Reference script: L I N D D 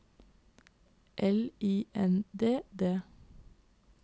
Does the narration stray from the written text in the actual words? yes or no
no